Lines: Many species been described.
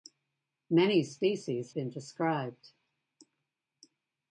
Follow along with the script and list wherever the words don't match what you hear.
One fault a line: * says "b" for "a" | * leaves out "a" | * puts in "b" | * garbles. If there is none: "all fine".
all fine